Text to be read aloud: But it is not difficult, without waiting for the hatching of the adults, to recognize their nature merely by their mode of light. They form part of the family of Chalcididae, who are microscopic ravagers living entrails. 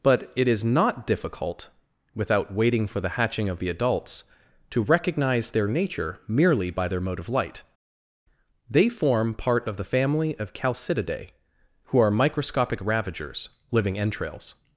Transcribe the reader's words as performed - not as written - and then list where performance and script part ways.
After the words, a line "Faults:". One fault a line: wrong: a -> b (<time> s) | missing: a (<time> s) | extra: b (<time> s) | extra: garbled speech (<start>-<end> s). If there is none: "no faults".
But it is not difficult, without waiting for the hatching of the adults, to recognize their nature merely by their mode of light. They form part of the family of Chalcididae, who are microscopic ravagers living entrails.
Faults:
no faults